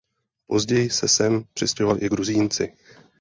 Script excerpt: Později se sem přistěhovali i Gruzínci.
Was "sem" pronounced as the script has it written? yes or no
yes